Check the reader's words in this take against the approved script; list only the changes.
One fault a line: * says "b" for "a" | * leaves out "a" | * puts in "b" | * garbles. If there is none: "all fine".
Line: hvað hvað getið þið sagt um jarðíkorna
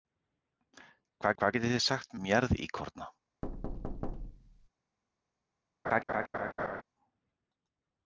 all fine